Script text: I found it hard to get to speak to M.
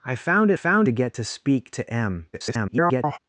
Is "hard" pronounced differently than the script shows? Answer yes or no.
yes